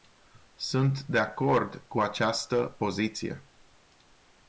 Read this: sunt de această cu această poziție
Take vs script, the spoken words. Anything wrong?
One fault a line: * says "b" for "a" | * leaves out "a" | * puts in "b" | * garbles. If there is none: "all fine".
* says "acord" for "această"